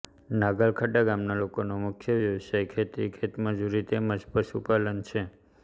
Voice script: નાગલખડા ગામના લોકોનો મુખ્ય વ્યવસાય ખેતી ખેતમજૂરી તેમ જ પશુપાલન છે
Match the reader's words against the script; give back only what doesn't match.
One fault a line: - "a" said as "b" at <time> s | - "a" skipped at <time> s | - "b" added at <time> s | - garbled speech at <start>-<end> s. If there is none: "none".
none